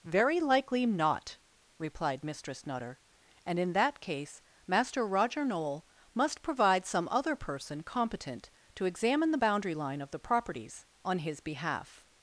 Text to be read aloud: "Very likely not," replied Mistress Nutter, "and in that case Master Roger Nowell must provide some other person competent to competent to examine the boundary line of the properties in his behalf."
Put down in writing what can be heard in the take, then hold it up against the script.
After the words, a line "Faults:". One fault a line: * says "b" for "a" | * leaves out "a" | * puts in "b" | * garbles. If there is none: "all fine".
"Very likely not," replied Mistress Nutter, "and in that case Master Roger Nowell must provide some other person competent to examine the boundary line of the properties on his behalf."
Faults:
* leaves out "competent to"
* says "on" for "in"